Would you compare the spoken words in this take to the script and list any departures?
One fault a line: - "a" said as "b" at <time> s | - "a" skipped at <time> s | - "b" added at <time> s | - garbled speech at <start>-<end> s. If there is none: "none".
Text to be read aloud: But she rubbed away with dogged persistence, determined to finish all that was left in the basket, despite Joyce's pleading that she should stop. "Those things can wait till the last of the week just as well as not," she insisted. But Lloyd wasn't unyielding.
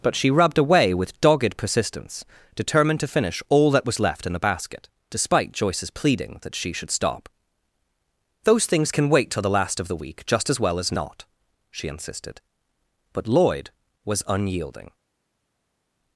- "wasn't" said as "was" at 14.0 s